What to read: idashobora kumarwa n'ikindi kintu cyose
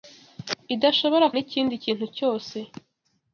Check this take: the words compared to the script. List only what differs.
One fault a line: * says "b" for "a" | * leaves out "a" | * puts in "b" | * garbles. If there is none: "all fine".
* leaves out "kumarwa"